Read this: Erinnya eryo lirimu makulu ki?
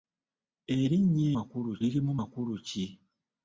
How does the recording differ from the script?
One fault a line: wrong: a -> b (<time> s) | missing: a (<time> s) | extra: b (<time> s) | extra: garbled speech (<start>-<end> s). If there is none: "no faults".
wrong: eryo -> makulu (1.4 s)